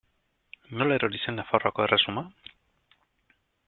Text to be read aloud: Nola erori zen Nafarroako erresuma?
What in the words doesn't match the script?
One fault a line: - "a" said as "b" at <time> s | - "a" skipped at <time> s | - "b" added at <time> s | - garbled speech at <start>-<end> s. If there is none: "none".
none